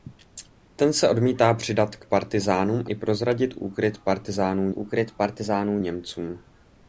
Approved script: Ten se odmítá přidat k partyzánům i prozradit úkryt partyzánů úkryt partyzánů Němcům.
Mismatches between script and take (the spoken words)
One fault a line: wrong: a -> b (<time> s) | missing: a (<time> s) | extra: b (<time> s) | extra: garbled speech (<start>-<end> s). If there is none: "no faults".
no faults